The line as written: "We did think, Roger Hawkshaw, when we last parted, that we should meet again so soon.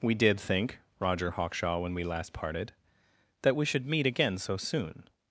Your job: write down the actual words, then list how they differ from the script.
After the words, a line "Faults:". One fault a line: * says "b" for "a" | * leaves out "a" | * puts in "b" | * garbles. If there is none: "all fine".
"We did think, Roger Hawkshaw, when we last parted, that we should meet again so soon.
Faults:
all fine